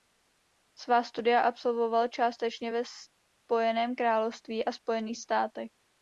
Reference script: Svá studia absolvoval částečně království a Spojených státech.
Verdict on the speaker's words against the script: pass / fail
fail